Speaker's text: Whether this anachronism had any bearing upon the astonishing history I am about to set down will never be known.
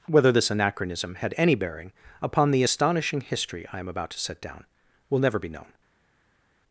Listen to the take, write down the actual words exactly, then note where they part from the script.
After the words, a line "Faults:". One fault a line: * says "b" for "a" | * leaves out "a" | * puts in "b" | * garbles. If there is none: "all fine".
Whether this anachronism had any bearing upon the astonishing history I am about to set down will never be known.
Faults:
all fine